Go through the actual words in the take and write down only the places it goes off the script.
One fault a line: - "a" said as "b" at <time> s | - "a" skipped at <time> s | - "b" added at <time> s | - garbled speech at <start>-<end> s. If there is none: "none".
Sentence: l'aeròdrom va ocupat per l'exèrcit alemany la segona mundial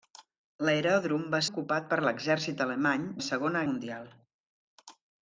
none